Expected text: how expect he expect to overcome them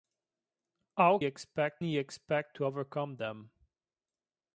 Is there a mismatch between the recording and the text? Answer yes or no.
no